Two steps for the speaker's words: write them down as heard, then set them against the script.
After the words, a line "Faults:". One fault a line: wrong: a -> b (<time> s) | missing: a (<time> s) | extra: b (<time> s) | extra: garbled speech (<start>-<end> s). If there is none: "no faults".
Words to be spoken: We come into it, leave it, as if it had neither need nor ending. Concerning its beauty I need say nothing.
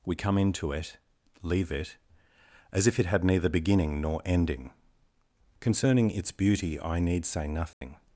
We come into it, leave it, as if it had neither beginning nor ending. Concerning its beauty I need say nothing.
Faults:
wrong: need -> beginning (3.5 s)